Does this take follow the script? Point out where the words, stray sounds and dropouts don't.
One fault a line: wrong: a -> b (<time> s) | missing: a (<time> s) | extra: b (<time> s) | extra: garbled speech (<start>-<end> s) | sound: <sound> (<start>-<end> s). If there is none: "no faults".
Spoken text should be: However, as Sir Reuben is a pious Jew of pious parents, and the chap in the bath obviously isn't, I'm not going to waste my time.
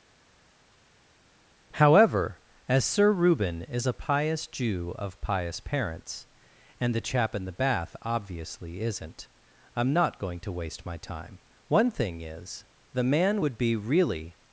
extra: One thing is the man would be really (11.7 s)